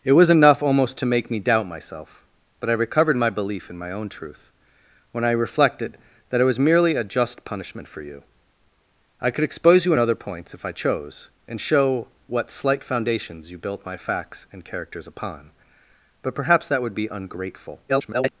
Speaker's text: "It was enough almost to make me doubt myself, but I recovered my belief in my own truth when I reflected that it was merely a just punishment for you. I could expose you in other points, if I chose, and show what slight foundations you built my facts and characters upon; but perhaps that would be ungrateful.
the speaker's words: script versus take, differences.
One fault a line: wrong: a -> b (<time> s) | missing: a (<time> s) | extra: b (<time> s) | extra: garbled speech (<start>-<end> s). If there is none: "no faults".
extra: garbled speech (17.9-18.3 s)